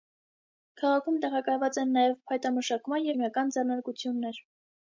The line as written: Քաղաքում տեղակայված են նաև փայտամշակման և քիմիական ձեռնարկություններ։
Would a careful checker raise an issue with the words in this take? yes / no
yes